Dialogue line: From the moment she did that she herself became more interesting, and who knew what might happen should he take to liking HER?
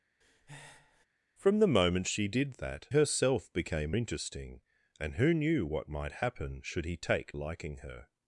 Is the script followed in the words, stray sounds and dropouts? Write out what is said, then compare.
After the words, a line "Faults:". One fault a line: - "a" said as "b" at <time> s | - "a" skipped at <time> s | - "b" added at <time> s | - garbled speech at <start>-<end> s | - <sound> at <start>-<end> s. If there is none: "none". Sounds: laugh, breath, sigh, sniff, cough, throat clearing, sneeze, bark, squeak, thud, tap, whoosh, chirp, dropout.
From the moment she did that herself became interesting, and who knew what might happen should he take liking HER?
Faults:
- breath at 0.2-1.1 s
- "she" skipped at 2.9 s
- "more" skipped at 3.9 s
- "to" skipped at 7.3 s